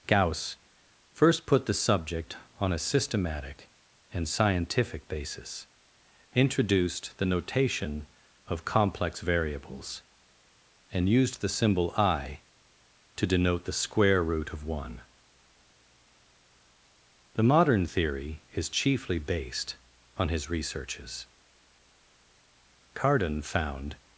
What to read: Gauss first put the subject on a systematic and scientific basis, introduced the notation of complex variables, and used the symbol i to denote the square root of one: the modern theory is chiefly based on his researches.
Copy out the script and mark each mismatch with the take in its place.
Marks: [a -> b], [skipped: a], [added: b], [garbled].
Gauss first put the subject on a systematic and scientific basis, introduced the notation of complex variables, and used the symbol i to denote the square root of one: the modern theory is chiefly based on his researches. [added: Cardan found]